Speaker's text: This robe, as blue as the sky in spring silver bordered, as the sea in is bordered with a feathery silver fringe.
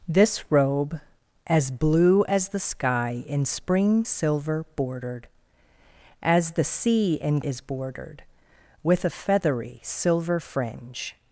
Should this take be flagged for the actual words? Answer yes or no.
no